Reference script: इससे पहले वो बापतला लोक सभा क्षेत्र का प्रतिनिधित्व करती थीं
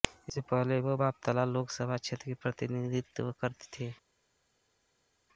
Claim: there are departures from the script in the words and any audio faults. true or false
false